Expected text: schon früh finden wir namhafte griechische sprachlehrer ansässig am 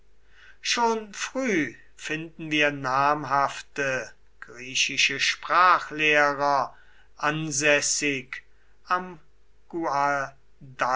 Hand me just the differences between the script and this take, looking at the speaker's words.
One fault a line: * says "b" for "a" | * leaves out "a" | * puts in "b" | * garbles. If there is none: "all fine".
all fine